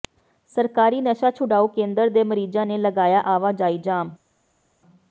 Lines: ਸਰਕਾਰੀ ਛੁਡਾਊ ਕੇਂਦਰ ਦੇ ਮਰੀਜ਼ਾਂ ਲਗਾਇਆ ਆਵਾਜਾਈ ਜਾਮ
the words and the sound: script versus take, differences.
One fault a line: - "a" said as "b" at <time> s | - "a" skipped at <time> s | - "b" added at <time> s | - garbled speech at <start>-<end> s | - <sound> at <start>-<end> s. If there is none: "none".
- "ਨਸ਼ਾ" added at 1.0 s
- "ਨੇ" added at 2.6 s